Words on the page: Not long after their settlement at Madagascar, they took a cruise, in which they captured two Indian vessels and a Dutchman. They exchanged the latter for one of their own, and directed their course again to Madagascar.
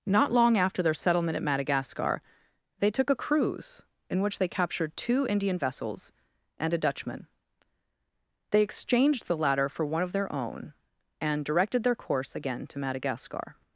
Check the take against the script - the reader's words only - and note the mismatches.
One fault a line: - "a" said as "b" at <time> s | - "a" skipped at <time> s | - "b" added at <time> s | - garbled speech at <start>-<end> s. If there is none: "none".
none